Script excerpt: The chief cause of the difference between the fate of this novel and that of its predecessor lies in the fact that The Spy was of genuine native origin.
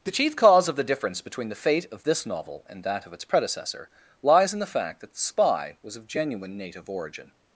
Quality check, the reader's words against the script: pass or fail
pass